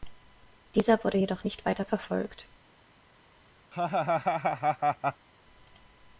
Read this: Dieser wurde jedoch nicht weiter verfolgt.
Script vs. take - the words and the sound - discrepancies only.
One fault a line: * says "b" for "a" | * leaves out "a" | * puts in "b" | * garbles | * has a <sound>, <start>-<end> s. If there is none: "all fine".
* has a laugh, 3.7-5.3 s